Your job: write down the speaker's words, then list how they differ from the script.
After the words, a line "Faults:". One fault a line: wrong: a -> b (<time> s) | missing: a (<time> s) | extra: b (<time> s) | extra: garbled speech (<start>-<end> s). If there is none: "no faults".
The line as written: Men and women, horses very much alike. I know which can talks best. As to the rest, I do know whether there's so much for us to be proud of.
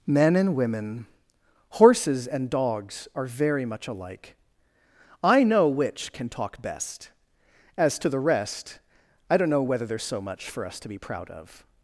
Men and women, horses and dogs, are very much alike. I know which can talk best. As to the rest, I don't know whether there's so much for us to be proud of.
Faults:
extra: and dogs are (2.3 s)
wrong: talks -> talk (6.3 s)
wrong: do -> don't (9.4 s)